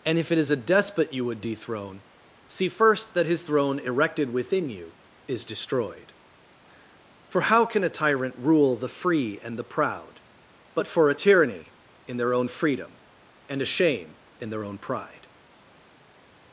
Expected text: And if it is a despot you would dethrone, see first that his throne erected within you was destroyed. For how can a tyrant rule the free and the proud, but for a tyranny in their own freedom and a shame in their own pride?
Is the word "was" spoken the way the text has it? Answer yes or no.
no